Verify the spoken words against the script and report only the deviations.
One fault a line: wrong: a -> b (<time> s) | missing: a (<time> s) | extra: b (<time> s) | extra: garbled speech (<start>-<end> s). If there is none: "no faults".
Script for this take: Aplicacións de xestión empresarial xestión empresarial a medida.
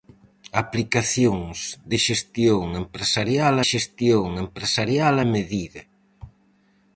no faults